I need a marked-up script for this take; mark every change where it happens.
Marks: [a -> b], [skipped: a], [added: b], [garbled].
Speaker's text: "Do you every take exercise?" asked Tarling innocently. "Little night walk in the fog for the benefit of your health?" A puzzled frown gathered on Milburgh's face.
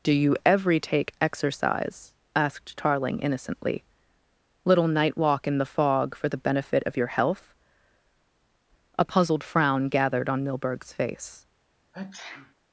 "Do you every take exercise?" asked Tarling innocently. "Little night walk in the fog for the benefit of your health?" A puzzled frown gathered on Milburgh's face.